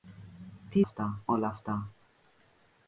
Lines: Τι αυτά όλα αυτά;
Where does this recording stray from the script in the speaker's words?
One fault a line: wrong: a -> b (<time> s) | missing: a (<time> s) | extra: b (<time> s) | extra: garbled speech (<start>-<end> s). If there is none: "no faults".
no faults